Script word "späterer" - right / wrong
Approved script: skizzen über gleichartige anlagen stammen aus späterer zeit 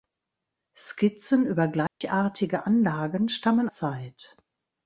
wrong